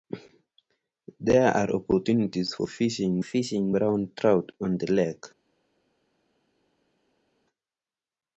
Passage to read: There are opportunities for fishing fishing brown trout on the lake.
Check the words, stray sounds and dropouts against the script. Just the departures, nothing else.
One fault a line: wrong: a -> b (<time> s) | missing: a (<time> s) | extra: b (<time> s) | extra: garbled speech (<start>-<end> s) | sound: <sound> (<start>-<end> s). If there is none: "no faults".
no faults